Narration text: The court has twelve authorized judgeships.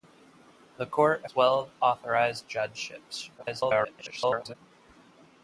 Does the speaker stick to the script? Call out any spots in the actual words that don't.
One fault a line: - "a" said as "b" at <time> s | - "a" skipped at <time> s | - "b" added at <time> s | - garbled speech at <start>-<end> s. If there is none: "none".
- "has" skipped at 1.3 s
- garbled speech at 3.4-4.6 s